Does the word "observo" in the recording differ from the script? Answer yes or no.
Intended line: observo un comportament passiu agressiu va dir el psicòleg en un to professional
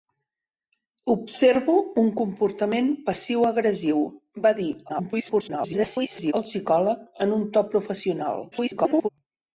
no